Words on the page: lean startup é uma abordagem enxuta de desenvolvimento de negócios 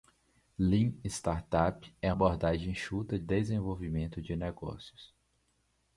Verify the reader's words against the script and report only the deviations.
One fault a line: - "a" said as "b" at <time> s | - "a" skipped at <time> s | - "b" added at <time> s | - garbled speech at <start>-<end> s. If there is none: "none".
- "uma" skipped at 2.1 s
- "de" skipped at 3.2 s